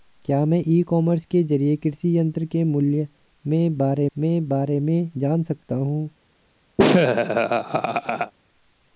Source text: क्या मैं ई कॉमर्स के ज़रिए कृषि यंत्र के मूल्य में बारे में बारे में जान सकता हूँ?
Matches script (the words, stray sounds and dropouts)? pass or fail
fail